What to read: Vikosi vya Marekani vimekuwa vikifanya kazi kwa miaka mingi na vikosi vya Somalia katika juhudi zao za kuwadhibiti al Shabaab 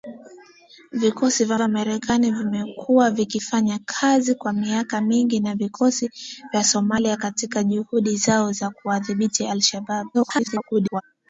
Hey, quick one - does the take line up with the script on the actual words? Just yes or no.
no